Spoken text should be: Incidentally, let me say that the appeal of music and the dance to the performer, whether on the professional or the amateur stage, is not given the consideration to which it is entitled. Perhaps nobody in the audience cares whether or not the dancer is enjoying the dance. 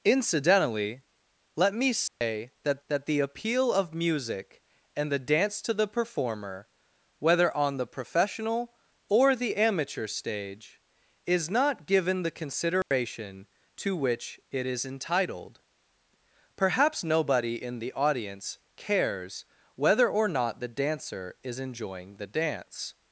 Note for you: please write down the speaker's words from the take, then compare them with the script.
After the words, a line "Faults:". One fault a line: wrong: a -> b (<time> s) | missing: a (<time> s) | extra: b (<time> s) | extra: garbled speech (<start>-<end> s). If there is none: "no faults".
Incidentally, let me say that that the appeal of music and the dance to the performer, whether on the professional or the amateur stage, is not given the consideration to which it is entitled. Perhaps nobody in the audience cares whether or not the dancer is enjoying the dance.
Faults:
extra: that (2.9 s)